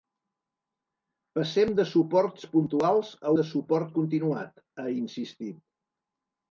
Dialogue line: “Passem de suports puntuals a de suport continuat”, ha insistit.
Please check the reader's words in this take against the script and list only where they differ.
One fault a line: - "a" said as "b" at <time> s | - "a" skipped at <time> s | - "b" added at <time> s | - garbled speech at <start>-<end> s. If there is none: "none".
none